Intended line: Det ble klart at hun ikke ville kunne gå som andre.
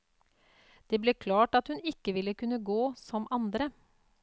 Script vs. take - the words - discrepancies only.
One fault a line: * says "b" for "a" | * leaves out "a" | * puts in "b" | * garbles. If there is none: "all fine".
all fine